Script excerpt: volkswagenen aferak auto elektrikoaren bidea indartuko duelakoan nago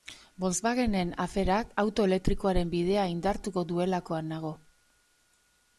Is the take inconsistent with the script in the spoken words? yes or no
no